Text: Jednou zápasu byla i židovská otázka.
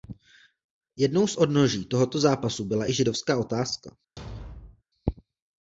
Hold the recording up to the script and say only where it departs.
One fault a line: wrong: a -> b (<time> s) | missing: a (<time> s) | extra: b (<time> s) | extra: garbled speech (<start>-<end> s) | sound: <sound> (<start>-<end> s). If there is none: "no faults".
extra: z odnoží tohoto (1.3 s)
sound: thud (4.2-4.8 s)